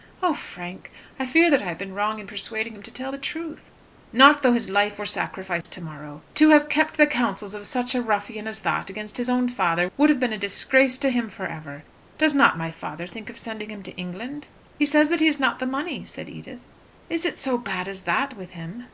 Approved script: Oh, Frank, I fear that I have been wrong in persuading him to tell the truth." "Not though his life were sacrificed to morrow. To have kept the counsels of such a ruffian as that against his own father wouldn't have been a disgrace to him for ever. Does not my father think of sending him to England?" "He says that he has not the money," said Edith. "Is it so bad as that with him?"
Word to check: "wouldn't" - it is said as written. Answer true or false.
false